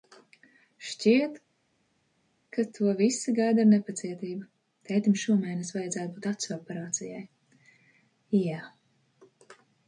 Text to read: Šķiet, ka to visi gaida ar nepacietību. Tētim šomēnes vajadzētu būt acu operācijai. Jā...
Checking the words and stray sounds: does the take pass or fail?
pass